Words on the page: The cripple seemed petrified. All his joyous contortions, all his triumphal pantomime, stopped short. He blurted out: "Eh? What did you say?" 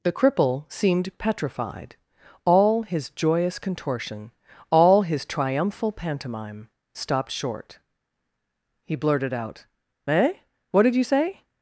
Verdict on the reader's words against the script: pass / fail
fail